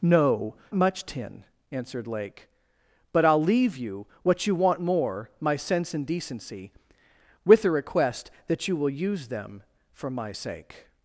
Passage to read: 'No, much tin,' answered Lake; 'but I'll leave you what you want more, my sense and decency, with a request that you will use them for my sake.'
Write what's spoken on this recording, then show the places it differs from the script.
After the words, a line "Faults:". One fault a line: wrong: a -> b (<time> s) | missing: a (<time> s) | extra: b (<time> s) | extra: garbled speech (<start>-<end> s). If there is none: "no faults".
'No, much tin,' answered Lake; 'but I'll leave you what you want more, my sense and decency, with a request that you will use them for my sake.'
Faults:
no faults